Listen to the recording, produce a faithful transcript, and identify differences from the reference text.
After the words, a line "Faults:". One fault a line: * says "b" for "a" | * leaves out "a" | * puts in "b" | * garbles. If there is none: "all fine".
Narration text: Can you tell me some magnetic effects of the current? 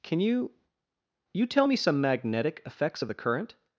Can you you tell me some magnetic effects of the current?
Faults:
* puts in "you"